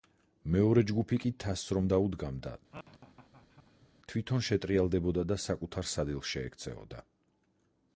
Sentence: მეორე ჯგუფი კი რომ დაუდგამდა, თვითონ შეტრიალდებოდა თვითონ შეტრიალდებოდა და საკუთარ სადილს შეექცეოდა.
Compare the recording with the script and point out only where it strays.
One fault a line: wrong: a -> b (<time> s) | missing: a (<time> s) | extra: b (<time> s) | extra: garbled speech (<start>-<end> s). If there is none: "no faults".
extra: თასს (1.4 s)
missing: თვითონ შეტრიალდებოდა (5.3 s)